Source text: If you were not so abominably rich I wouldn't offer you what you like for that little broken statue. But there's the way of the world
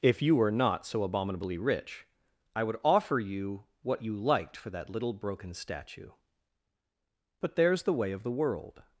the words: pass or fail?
fail